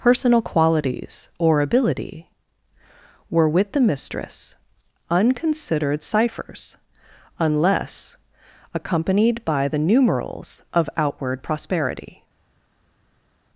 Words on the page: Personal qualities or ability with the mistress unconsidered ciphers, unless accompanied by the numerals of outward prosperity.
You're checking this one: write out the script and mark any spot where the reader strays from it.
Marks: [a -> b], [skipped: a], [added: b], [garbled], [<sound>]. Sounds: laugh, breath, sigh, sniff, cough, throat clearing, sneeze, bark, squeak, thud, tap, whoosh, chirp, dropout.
Personal qualities or ability [added: were] with the mistress unconsidered ciphers, unless accompanied by the numerals of outward prosperity.